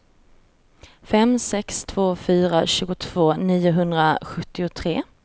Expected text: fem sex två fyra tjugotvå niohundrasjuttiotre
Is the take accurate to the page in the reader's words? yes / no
yes